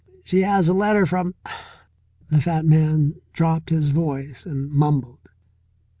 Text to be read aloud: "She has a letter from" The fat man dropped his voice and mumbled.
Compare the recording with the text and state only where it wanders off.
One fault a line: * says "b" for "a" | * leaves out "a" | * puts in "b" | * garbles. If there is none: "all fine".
all fine